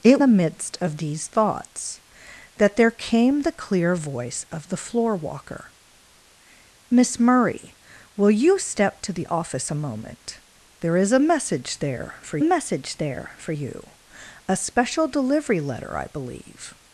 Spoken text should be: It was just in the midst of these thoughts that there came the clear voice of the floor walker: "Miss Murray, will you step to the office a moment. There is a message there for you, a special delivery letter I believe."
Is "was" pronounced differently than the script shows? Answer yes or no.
yes